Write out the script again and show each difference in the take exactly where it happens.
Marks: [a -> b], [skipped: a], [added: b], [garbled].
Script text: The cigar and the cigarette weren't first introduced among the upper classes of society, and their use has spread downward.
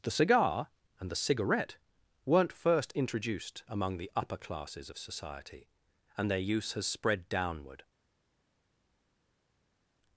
The cigar and the cigarette weren't first introduced among the upper classes of society, and their use has spread downward.